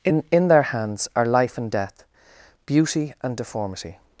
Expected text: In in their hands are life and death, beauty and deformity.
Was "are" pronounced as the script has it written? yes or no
yes